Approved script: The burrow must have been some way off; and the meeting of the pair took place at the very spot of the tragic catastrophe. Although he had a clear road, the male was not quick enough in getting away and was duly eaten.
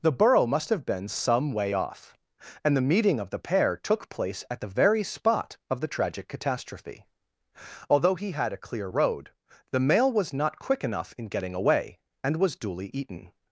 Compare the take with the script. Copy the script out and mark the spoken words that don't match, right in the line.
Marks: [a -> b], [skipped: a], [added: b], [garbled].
The burrow must have been some way off; and the meeting of the pair took place at the very spot of the tragic catastrophe. Although he had a clear road, the male was not quick enough in getting away and was duly eaten.